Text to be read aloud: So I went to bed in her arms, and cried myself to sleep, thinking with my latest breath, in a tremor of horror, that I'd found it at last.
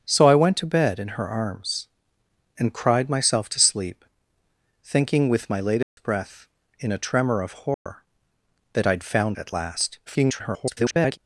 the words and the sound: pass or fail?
fail